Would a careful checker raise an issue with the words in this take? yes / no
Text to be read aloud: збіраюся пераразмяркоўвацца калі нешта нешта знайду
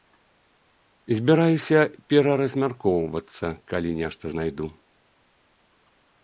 yes